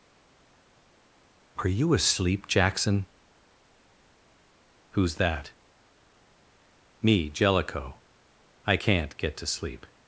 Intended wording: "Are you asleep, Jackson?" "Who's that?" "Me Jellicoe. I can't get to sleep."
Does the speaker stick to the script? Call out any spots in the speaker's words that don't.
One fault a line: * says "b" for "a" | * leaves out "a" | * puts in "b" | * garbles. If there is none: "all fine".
all fine